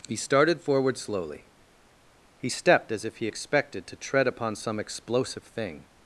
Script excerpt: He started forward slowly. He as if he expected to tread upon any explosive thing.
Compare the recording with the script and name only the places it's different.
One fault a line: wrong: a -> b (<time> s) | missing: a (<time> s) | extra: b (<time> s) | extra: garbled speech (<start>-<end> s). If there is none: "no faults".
extra: stepped (2.5 s)
wrong: any -> some (4.5 s)